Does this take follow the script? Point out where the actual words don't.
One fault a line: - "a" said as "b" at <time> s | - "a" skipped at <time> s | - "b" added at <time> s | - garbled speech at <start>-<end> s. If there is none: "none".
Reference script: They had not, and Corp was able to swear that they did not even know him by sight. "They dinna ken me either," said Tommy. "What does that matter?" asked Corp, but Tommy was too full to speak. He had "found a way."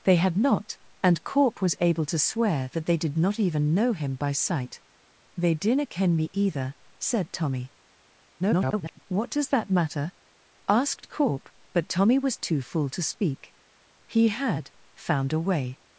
- garbled speech at 8.4-9.0 s